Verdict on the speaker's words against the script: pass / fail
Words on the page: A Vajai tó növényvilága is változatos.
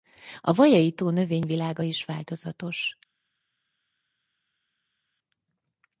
pass